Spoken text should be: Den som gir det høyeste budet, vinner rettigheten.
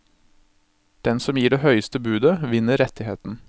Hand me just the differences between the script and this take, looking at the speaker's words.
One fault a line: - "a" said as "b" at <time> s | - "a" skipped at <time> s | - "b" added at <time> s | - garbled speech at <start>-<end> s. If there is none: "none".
none